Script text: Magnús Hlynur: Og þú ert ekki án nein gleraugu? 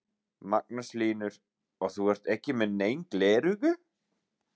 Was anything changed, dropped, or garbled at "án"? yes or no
yes